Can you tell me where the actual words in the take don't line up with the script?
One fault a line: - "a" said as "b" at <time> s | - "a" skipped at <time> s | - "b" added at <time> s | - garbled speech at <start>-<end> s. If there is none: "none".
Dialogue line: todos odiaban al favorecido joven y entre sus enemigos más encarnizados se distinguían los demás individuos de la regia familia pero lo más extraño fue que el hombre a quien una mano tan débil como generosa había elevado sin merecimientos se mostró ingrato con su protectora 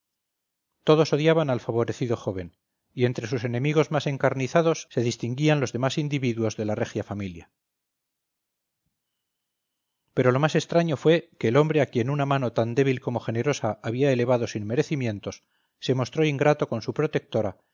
none